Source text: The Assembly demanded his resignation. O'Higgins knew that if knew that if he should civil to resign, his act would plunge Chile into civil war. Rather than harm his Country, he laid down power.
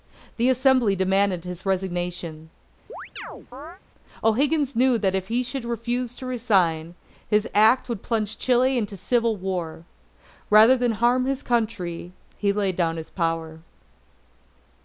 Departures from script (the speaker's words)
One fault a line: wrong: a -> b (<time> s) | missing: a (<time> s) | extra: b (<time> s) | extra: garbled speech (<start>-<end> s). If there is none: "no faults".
missing: knew that if (5.3 s)
wrong: civil -> refuse (5.6 s)
extra: his (13.0 s)